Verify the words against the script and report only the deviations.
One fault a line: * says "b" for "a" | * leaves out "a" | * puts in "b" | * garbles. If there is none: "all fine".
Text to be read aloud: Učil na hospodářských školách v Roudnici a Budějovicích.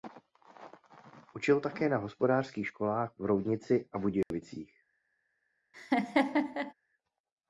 * puts in "také"